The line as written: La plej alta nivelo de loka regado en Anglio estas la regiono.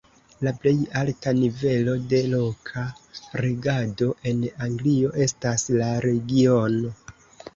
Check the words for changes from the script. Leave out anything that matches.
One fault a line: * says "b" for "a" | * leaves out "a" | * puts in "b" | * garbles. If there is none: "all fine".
all fine